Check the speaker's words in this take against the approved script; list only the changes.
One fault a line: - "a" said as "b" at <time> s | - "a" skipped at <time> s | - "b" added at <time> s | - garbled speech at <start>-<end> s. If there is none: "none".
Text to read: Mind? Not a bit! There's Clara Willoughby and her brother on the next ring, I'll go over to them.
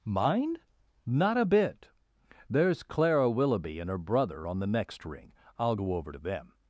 none